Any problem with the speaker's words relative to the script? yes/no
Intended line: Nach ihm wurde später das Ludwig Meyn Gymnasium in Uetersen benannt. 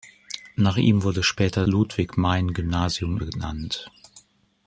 yes